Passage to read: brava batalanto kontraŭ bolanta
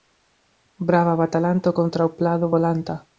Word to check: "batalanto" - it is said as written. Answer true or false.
true